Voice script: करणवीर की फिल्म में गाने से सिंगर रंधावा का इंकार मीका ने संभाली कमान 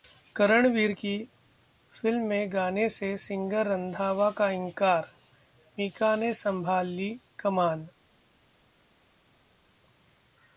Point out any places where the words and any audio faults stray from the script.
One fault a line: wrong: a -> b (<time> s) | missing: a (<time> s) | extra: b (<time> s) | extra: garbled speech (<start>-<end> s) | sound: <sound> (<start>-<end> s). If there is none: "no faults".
no faults